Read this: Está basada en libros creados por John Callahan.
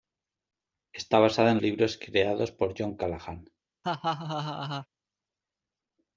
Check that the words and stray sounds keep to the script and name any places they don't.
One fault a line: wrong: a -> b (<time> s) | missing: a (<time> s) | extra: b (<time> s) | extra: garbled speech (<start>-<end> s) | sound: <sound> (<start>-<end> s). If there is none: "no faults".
sound: laugh (3.8-4.9 s)